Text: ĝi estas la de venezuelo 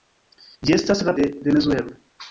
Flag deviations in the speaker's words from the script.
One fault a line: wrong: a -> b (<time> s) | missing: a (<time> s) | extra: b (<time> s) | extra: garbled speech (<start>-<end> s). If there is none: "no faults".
no faults